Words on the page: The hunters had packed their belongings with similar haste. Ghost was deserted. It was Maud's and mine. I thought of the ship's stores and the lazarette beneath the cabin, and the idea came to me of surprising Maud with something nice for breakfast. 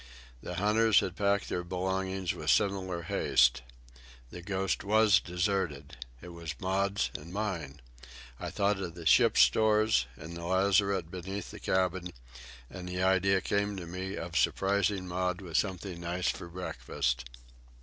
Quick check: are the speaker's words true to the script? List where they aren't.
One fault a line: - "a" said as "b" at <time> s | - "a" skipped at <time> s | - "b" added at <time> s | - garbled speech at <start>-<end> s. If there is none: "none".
- "The" added at 4.3 s